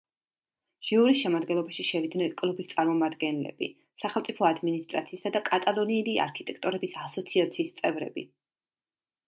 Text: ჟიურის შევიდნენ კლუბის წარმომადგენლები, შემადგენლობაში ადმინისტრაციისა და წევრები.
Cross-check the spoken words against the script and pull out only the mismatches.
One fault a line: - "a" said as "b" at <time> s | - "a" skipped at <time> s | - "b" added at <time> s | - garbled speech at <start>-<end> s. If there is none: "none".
- "შემადგენლობაში" added at 1.2 s
- "შემადგენლობაში" said as "სახელმწიფო" at 4.0 s
- "კატალონიელი არქიტექტორების ასოციაციის" added at 5.5 s